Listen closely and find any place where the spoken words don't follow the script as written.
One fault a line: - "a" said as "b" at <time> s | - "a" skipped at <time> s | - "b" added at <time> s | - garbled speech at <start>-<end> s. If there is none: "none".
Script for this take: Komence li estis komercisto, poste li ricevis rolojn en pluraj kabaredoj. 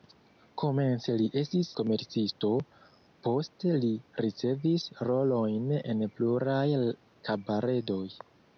none